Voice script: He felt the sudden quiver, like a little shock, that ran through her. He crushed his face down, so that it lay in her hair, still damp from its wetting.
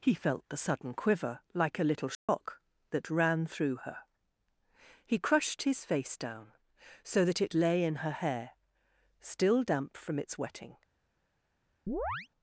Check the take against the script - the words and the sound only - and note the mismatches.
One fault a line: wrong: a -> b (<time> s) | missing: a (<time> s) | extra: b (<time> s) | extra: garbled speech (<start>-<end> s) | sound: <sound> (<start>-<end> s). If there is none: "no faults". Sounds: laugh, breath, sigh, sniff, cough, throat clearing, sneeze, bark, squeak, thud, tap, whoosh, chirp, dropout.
sound: dropout (2.1-2.3 s)
sound: chirp (11.9-12.3 s)